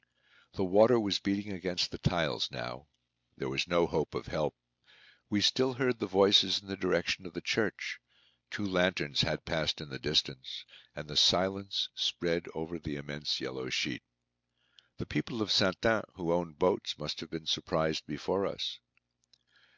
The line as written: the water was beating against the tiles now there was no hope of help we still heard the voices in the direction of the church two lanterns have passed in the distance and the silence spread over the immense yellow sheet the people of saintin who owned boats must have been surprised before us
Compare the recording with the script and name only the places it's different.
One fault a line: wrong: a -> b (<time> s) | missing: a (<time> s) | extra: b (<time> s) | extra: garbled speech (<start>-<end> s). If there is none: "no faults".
wrong: have -> had (9.2 s)